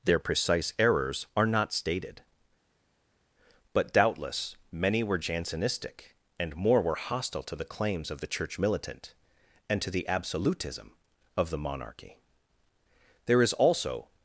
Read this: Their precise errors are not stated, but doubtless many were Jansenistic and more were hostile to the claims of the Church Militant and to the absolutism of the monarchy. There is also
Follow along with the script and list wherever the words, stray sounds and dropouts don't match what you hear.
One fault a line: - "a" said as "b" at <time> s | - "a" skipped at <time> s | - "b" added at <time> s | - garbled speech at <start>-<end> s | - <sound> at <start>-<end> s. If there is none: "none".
none